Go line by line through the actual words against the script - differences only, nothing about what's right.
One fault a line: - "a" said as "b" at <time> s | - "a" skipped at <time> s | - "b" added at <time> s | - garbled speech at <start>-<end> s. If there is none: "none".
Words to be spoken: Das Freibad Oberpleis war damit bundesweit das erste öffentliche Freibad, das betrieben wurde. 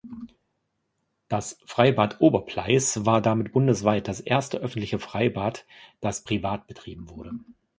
- "privat" added at 6.2 s